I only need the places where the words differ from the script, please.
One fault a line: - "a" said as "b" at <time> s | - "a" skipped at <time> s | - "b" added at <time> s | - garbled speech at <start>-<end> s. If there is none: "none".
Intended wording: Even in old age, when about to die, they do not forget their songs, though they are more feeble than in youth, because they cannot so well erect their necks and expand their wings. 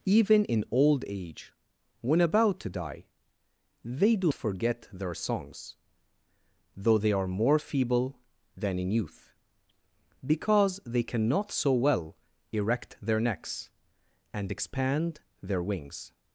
- "not" skipped at 4.3 s